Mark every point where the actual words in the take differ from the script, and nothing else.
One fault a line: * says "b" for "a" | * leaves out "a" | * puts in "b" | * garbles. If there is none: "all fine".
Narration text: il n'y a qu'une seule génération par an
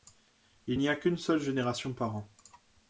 all fine